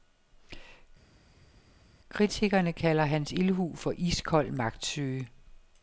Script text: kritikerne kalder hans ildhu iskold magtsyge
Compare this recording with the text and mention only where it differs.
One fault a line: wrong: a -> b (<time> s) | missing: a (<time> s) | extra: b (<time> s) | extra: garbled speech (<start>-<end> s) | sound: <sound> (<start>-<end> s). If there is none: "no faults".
extra: for (3.8 s)